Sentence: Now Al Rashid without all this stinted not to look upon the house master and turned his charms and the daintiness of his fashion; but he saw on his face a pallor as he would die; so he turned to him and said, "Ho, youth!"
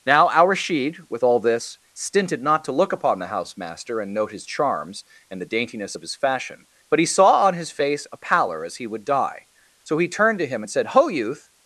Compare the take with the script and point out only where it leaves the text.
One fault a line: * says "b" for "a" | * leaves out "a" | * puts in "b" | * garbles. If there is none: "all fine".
* says "with" for "without"
* says "note" for "turned"